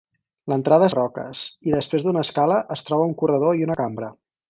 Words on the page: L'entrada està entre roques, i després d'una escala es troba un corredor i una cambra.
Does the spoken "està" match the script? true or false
false